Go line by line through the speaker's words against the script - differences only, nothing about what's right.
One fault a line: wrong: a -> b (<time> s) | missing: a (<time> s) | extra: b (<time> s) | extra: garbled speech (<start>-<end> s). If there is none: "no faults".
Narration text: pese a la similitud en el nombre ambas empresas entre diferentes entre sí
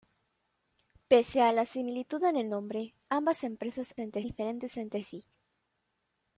no faults